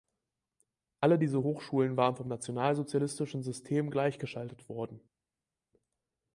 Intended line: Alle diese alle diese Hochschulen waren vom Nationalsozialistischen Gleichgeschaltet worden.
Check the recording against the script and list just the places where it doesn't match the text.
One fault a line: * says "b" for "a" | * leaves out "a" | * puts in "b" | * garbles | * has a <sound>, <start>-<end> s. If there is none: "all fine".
* leaves out "alle diese"
* puts in "System"